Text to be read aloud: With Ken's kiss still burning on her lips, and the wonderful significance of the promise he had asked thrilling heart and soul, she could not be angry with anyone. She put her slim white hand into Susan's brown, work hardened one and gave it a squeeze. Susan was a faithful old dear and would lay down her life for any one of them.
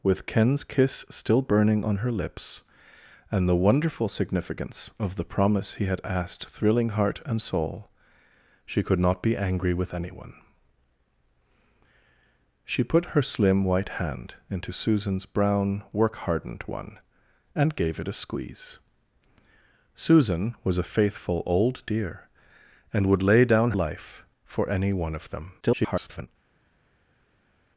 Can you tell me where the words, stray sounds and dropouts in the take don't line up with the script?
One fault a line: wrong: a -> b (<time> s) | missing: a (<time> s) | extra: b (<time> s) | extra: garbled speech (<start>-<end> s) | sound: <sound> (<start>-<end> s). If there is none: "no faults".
missing: her (23.7 s)
extra: garbled speech (25.6-26.3 s)